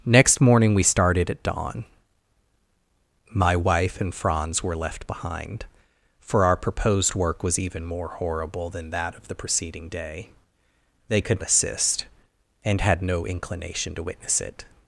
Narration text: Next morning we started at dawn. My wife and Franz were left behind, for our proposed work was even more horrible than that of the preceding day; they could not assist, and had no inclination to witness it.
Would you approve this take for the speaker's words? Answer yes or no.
no